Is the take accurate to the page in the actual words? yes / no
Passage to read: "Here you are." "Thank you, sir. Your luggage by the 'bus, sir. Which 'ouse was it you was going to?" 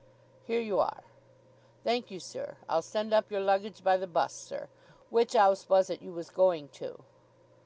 no